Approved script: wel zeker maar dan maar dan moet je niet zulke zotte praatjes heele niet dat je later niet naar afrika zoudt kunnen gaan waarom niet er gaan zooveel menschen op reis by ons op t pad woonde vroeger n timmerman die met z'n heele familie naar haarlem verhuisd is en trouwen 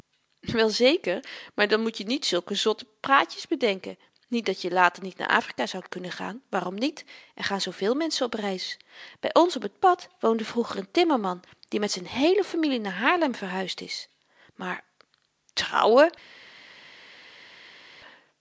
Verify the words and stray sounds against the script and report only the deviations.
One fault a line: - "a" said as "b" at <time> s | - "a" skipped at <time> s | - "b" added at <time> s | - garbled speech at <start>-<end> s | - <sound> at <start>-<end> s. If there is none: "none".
- "maar dan" skipped at 1.8 s
- "heele" said as "bedenken" at 3.5 s
- "en" said as "maar" at 14.5 s